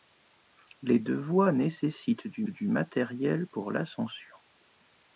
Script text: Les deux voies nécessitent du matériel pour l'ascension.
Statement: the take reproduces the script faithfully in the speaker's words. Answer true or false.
false